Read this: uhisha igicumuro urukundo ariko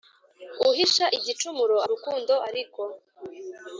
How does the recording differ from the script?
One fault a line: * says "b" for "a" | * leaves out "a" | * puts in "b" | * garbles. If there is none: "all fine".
all fine